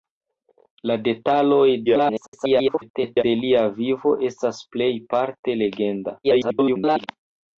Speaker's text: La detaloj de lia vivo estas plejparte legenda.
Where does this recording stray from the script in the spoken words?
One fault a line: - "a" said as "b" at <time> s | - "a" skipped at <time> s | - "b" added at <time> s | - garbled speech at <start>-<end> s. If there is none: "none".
- garbled speech at 1.9-3.2 s
- garbled speech at 6.2-7.1 s